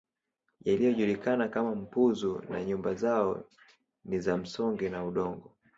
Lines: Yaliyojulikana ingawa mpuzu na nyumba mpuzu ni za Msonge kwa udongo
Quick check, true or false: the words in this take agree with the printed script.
false